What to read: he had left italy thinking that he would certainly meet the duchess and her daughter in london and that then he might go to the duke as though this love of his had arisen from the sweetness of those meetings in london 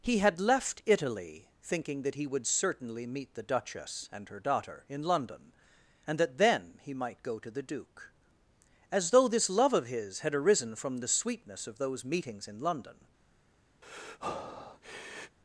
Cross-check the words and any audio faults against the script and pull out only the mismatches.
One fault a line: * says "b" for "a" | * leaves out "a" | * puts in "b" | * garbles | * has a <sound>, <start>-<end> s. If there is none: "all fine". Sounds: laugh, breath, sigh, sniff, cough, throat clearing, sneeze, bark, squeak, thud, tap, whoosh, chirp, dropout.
* has a breath, 13.8-15.4 s